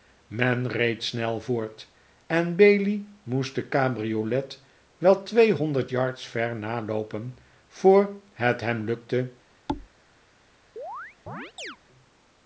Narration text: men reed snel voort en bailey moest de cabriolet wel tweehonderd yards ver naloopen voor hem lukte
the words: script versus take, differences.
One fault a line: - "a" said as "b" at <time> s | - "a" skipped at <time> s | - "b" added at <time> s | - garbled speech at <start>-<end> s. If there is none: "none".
- "het" added at 8.3 s